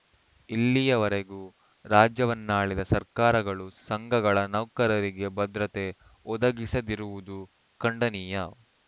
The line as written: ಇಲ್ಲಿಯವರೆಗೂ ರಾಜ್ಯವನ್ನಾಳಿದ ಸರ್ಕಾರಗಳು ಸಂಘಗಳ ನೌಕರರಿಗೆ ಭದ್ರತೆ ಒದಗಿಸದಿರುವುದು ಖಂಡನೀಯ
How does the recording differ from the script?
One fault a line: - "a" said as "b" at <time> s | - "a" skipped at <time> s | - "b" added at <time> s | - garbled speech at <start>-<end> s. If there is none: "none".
none